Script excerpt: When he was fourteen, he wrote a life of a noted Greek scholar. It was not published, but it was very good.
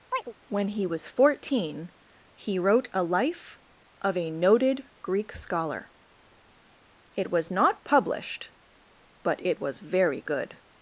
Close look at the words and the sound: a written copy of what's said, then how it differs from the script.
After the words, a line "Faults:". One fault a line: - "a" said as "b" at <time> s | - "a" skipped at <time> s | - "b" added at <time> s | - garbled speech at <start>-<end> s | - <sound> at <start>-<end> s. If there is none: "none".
When he was fourteen, he wrote a life of a noted Greek scholar. It was not published, but it was very good.
Faults:
- chirp at 0.1-0.3 s